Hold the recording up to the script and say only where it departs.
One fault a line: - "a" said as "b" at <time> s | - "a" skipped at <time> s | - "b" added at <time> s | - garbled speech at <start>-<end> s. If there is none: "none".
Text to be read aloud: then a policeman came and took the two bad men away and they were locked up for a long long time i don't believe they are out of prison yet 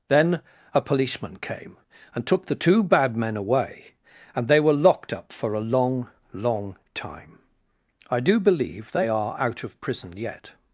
- "don't" said as "do" at 8.2 s